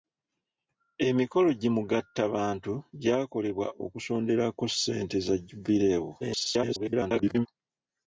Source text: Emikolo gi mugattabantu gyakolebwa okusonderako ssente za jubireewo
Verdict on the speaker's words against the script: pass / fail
fail